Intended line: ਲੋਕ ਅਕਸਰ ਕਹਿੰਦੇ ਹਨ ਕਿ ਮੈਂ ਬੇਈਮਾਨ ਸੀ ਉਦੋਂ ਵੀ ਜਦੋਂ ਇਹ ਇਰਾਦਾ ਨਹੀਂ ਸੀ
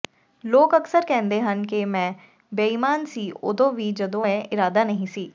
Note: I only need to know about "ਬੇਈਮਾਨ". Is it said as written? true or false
true